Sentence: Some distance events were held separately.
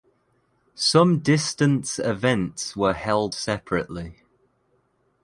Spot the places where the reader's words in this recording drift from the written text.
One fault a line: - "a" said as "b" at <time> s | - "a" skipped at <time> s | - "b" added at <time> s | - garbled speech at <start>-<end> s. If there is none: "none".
none